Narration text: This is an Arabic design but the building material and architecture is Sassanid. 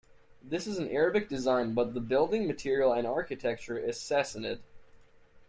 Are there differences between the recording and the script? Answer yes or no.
no